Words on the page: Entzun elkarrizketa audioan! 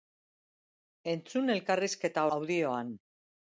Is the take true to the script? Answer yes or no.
yes